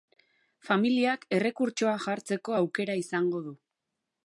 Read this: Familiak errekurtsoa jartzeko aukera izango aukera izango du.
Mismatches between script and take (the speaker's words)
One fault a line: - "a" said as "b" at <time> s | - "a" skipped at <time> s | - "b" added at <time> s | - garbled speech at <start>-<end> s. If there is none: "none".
- "aukera izango" skipped at 3.4 s